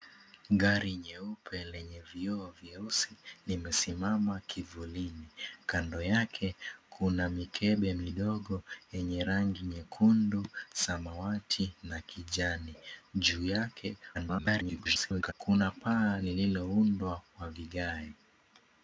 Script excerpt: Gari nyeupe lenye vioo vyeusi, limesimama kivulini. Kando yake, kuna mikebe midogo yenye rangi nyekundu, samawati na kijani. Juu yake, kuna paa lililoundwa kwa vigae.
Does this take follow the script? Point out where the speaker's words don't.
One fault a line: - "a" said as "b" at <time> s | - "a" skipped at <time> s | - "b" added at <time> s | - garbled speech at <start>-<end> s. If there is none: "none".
- garbled speech at 14.1-15.3 s